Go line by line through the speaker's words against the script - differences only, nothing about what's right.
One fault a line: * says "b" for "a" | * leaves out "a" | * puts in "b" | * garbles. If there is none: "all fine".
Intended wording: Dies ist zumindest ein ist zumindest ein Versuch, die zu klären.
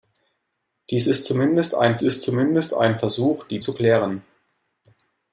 all fine